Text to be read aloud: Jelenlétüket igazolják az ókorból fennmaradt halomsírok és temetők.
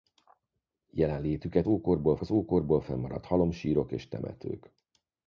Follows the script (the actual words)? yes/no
no